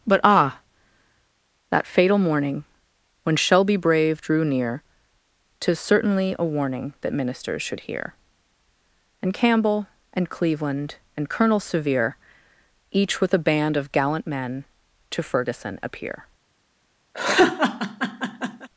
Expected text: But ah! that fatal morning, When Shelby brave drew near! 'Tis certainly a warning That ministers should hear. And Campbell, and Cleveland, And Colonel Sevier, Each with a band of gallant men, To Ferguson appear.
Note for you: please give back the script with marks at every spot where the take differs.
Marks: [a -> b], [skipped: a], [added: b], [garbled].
But ah! that fatal morning, When Shelby brave drew near! 'Tis certainly a warning That ministers should hear. And Campbell, and Cleveland, And Colonel Sevier, Each with a band of gallant men, To Ferguson appear.